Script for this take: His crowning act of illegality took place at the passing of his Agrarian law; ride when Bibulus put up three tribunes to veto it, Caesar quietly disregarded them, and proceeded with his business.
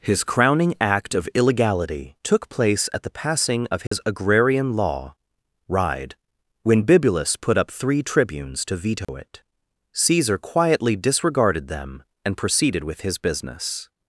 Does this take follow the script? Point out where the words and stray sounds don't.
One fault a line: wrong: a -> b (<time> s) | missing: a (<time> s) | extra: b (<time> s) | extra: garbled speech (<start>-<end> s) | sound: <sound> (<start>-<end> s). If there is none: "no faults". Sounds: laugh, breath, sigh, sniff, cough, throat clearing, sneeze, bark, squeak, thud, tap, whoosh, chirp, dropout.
sound: dropout (3.9-3.9 s)
sound: dropout (9.0-9.1 s)